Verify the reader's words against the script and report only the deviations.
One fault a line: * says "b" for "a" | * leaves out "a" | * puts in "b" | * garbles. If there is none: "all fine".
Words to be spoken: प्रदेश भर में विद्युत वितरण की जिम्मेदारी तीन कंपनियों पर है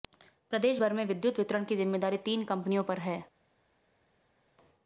all fine